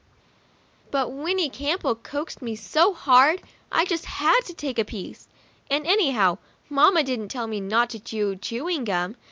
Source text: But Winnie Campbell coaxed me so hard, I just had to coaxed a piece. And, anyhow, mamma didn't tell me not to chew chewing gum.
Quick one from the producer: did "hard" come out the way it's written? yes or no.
yes